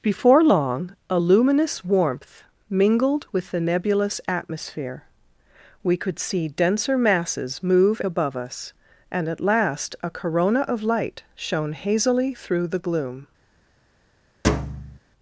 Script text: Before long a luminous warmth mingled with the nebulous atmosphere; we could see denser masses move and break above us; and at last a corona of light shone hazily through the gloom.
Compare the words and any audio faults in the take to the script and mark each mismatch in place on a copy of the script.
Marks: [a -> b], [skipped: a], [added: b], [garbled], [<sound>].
Before long a luminous warmth mingled with the nebulous atmosphere; we could see denser masses move [skipped: and break] above us; and at last a corona of light shone hazily through the gloom. [thud]